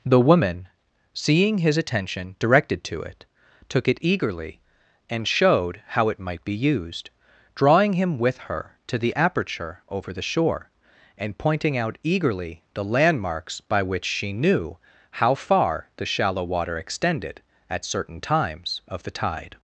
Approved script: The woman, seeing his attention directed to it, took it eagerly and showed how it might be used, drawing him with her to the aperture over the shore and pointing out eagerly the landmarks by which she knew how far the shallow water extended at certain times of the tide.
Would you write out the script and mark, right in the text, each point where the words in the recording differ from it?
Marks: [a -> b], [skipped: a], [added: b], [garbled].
The woman, seeing his attention directed to it, took it eagerly and showed how it might be used, drawing him with her to the aperture over the shore and pointing out eagerly the landmarks by which she knew how far the shallow water extended at certain times of the tide.